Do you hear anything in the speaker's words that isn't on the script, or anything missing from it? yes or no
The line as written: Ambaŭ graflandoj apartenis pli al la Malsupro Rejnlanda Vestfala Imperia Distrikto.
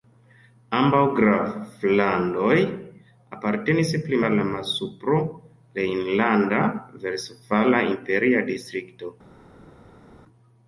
no